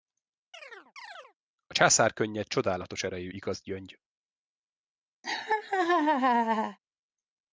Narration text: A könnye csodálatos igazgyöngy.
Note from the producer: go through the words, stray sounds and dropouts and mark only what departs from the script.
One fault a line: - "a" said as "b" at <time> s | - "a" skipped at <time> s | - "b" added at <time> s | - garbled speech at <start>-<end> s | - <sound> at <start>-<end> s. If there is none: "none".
- chirp at 0.5-1.3 s
- "császár" added at 1.7 s
- "erejű" added at 3.0 s
- laugh at 5.2-6.8 s